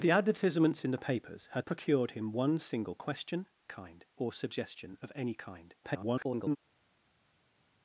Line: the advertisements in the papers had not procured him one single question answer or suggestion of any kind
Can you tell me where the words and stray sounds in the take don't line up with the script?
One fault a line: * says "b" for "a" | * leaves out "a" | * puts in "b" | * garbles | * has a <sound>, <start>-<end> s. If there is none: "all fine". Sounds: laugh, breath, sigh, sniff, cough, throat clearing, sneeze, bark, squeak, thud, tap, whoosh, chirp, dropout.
* leaves out "not"
* says "kind" for "answer"
* garbles